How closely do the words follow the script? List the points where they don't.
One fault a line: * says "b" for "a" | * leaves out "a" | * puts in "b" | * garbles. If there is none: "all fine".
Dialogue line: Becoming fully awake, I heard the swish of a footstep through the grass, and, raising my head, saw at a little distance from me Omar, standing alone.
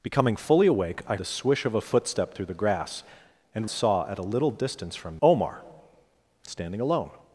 * leaves out "heard"
* leaves out "raising my head"
* leaves out "me"